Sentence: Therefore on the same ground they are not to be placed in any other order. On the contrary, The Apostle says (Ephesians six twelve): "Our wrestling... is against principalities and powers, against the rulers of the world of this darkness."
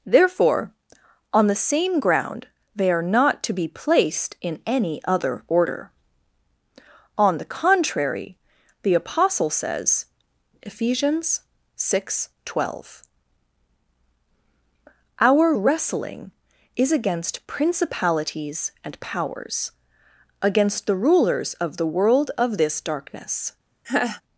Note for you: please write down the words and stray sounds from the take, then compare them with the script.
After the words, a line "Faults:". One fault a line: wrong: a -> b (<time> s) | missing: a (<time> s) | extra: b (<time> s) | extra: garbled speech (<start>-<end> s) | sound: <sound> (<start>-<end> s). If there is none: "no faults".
Therefore on the same ground they are not to be placed in any other order. On the contrary, The Apostle says (Ephesians six twelve): "Our wrestling... is against principalities and powers, against the rulers of the world of this darkness."
Faults:
sound: laugh (23.8-24.2 s)